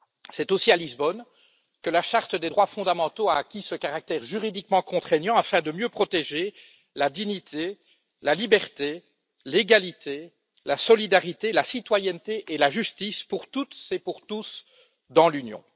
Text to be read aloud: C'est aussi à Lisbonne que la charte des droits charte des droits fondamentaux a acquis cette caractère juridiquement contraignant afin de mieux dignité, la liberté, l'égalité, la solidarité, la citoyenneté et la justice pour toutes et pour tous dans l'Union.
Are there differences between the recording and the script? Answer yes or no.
yes